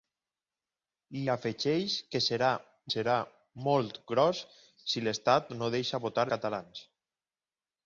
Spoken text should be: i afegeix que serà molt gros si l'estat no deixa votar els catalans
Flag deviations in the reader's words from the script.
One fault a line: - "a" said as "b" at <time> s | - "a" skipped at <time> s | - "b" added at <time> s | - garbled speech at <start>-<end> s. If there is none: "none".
- "serà" added at 2.9 s
- "els" skipped at 6.3 s